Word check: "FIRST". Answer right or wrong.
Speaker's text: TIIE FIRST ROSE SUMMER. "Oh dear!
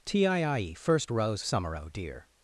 right